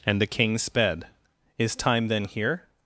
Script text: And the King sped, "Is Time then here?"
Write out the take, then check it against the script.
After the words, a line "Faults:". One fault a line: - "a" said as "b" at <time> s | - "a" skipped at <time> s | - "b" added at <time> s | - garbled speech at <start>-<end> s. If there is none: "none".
And the King sped, "Is Time then here?"
Faults:
none